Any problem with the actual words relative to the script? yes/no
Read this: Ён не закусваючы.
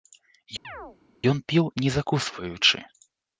yes